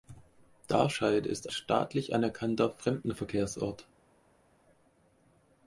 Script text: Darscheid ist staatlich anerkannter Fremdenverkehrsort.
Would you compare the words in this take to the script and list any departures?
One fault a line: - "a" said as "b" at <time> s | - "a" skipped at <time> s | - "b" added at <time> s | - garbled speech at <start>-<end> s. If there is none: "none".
none